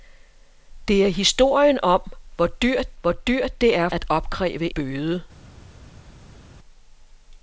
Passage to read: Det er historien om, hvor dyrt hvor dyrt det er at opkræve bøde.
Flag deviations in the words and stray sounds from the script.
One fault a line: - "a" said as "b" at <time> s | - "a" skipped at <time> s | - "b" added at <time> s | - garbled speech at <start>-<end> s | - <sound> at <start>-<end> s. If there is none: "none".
none